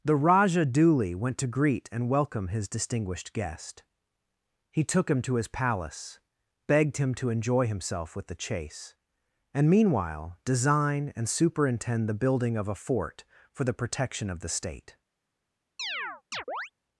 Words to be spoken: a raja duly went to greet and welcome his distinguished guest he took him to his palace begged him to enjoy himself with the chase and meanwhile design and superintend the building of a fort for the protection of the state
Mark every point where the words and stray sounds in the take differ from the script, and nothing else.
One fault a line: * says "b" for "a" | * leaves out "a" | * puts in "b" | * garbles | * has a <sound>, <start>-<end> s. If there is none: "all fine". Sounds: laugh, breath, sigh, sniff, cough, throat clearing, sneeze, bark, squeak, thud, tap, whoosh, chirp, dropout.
* says "the" for "a"
* has a chirp, 15.8-16.7 s